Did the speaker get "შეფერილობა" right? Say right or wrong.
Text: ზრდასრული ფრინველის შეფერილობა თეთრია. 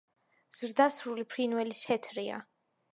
wrong